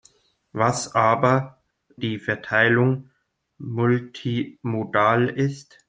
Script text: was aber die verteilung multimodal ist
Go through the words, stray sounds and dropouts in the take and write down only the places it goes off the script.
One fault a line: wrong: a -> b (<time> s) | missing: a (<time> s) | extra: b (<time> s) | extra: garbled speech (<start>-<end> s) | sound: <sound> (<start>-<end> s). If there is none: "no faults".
no faults